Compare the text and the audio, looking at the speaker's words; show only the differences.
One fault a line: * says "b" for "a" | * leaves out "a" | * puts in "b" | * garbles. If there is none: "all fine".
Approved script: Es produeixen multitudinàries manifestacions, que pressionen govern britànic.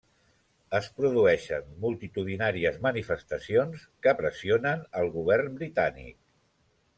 * puts in "el"